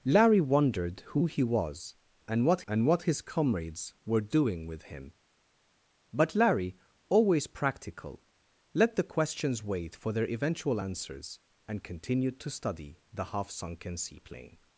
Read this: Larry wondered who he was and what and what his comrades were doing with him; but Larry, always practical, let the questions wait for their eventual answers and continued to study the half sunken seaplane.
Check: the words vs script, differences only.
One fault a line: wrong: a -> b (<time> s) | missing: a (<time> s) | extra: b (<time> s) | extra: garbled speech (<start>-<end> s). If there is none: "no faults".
no faults